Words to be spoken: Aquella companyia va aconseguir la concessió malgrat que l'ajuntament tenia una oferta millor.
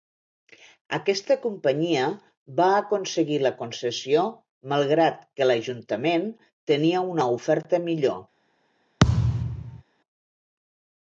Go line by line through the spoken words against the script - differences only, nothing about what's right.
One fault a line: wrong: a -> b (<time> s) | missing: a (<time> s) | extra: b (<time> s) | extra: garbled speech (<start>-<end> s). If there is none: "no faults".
wrong: Aquella -> Aquesta (1.0 s)